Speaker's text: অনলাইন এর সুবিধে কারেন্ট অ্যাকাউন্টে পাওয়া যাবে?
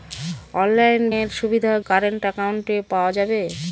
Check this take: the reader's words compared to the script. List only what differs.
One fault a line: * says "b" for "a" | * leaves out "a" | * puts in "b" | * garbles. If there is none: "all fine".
all fine